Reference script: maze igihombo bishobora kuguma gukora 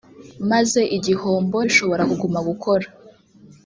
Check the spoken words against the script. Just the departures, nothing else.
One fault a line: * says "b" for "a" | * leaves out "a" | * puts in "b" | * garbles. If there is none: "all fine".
all fine